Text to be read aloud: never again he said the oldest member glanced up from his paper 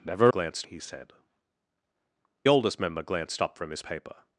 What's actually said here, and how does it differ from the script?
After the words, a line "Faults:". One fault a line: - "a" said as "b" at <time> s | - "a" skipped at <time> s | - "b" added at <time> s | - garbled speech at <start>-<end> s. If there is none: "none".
never glanced he said oldest member glanced up from his paper
Faults:
- "again" said as "glanced" at 0.3 s
- "the" skipped at 1.1 s